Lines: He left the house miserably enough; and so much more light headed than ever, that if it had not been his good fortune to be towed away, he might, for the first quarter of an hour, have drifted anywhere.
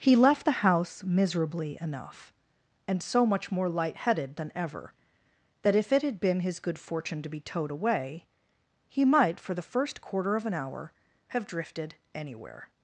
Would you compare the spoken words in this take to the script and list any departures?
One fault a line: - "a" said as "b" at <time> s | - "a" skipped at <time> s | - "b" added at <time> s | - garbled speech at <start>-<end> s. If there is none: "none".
- "not" skipped at 6.2 s